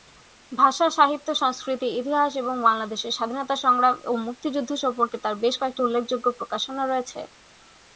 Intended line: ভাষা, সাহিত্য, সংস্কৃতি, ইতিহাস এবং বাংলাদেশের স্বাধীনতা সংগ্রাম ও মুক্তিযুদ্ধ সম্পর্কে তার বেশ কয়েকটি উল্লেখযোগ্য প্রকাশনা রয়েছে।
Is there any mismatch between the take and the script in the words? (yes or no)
no